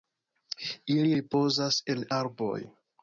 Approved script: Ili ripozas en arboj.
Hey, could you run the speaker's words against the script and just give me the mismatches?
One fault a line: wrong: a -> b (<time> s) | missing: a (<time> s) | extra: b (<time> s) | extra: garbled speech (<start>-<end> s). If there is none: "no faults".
no faults